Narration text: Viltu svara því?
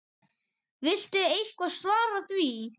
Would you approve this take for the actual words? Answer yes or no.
no